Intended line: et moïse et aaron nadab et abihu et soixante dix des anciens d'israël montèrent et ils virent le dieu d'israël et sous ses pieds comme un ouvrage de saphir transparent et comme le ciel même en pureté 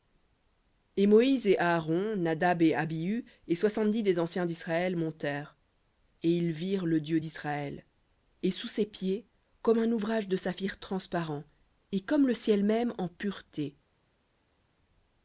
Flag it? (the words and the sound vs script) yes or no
no